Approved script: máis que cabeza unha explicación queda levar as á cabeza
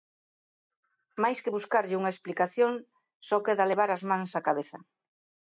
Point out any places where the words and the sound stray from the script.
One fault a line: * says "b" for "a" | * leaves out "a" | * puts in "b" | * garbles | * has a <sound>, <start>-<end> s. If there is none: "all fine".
* says "buscarlle" for "cabeza"
* puts in "só"
* puts in "mans"